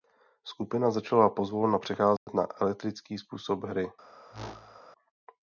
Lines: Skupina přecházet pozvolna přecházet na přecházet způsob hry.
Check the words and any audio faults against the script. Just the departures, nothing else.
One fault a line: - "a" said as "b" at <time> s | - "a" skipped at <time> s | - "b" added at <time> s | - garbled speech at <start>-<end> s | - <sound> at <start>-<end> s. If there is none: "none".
- "přecházet" said as "začala" at 0.9 s
- dropout at 2.2-2.3 s
- "přecházet" said as "elektrický" at 2.6 s
- whoosh at 4.3-4.8 s